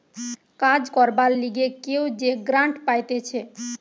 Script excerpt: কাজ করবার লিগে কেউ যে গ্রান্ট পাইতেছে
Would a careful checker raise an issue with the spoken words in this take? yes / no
no